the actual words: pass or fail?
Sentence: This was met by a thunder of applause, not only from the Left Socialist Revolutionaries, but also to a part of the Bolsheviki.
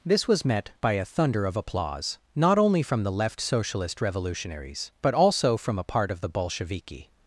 fail